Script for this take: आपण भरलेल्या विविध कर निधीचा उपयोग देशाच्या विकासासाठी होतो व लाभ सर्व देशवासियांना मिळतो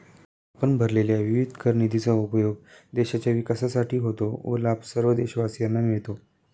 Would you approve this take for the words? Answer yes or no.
yes